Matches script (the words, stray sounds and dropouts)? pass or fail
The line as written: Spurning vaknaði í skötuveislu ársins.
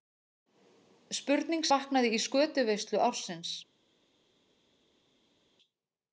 pass